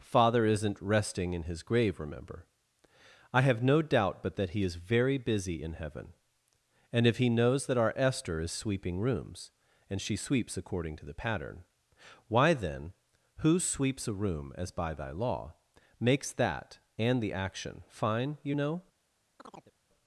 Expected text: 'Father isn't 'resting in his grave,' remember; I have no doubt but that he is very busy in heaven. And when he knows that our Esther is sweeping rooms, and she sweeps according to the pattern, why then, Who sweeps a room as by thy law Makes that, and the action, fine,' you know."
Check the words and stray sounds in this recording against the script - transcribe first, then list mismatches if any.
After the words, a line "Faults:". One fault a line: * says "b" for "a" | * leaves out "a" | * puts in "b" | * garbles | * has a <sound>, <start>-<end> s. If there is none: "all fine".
'Father isn't 'resting in his grave,' remember; I have no doubt but that he is very busy in heaven. And if he knows that our Esther is sweeping rooms, and she sweeps according to the pattern, why then, Who sweeps a room as by thy law Makes that, and the action, fine,' you know."
Faults:
* says "if" for "when"
* has a chirp, 19.4-19.7 s